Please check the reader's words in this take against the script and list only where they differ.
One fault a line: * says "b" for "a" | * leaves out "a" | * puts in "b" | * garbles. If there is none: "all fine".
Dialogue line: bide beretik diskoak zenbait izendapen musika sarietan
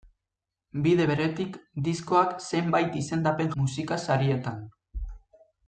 all fine